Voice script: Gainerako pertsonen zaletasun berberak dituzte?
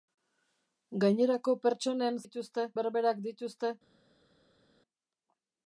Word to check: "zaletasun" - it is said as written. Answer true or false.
false